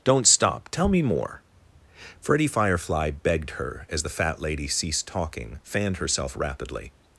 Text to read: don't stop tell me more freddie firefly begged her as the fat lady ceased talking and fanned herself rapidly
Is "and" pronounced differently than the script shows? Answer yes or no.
yes